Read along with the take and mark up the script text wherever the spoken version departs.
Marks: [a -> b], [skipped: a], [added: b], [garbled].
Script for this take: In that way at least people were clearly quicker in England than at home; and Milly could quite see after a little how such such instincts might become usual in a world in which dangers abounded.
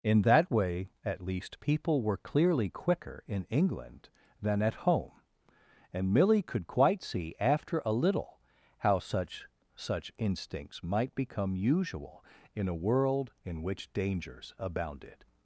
In that way at least people were clearly quicker in England than at home; and Milly could quite see after a little how such such instincts might become usual in a world in which dangers abounded.